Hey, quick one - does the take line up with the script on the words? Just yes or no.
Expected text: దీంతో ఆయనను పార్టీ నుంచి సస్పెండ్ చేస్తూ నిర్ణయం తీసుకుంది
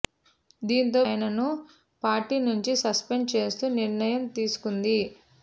yes